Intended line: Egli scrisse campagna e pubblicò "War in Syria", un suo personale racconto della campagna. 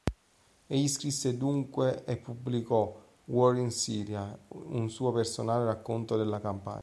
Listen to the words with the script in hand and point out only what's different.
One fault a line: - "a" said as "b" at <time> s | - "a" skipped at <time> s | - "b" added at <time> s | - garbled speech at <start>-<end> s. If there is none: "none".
- "campagna" said as "dunque" at 1.4 s